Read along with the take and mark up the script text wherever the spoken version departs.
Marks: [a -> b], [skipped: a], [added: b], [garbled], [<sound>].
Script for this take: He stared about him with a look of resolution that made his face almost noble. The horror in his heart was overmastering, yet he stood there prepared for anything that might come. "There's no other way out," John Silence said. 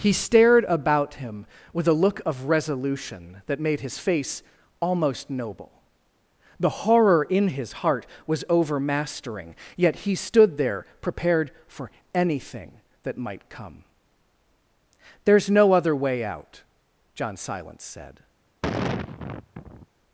He stared about him with a look of resolution that made his face almost noble. The horror in his heart was overmastering, yet he stood there prepared for anything that might come. "There's no other way out," John Silence said. [sigh]